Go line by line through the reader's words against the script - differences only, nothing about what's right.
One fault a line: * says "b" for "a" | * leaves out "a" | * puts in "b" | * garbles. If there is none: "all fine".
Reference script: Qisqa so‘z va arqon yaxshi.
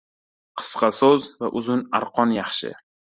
* puts in "uzun"